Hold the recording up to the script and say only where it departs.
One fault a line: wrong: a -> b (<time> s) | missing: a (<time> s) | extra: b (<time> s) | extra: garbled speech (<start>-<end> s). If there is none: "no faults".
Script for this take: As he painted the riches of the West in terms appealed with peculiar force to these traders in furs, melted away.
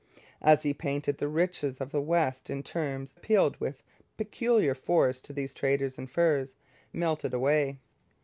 no faults